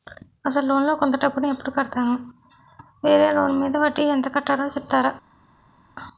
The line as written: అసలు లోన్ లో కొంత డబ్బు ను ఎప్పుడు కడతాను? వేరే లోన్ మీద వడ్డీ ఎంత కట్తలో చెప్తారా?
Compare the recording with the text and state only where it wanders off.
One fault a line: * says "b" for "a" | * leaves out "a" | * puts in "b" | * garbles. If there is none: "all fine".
all fine